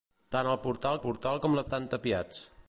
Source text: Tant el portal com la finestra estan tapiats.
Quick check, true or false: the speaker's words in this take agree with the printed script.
false